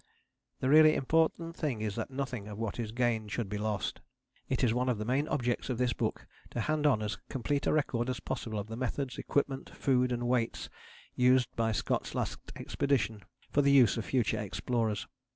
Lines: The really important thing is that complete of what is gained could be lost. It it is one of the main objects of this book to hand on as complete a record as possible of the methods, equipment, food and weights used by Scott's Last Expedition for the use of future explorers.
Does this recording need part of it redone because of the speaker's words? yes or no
yes